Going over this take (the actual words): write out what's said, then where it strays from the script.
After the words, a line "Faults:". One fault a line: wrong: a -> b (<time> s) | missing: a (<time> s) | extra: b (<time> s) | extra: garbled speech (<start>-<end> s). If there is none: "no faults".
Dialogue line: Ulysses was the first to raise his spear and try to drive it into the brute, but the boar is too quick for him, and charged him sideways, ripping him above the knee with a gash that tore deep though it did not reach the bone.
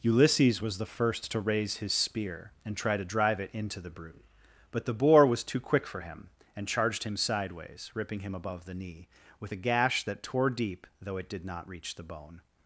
Ulysses was the first to raise his spear and try to drive it into the brute, but the boar was too quick for him, and charged him sideways, ripping him above the knee with a gash that tore deep though it did not reach the bone.
Faults:
wrong: is -> was (5.3 s)